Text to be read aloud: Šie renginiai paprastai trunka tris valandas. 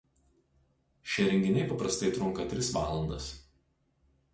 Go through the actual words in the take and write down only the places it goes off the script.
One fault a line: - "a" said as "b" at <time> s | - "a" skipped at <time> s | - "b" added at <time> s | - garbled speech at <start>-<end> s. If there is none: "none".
none